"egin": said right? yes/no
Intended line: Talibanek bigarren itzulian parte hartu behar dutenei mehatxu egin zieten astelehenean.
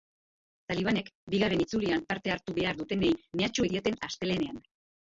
no